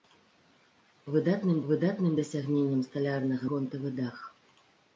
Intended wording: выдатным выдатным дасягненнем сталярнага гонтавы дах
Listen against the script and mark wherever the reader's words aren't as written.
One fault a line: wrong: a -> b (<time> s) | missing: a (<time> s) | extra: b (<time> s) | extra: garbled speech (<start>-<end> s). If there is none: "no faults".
no faults